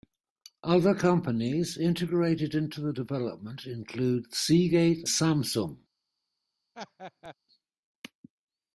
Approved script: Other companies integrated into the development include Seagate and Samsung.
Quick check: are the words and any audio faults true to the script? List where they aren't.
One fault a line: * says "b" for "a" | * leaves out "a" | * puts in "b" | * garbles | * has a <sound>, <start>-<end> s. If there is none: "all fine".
* leaves out "and"
* has a laugh, 6.7-7.3 s